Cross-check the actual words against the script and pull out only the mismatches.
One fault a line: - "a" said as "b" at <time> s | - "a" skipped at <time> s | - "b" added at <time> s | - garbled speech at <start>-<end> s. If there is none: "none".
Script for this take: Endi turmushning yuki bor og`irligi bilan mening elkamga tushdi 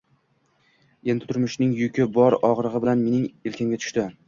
none